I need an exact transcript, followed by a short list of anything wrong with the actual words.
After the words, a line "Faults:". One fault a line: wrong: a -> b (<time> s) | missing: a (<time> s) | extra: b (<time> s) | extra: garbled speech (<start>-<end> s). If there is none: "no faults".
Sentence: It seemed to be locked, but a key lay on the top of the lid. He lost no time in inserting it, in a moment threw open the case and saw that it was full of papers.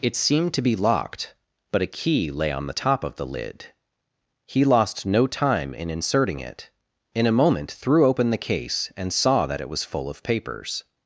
It seemed to be locked, but a key lay on the top of the lid. He lost no time in inserting it, in a moment threw open the case and saw that it was full of papers.
Faults:
no faults